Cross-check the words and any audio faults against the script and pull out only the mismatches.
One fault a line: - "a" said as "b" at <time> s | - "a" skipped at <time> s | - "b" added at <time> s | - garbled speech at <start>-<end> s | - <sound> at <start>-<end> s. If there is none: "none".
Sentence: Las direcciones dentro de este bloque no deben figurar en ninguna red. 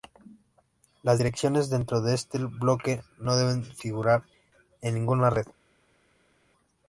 none